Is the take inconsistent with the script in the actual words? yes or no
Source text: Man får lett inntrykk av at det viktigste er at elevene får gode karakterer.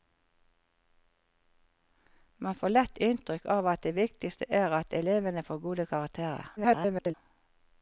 yes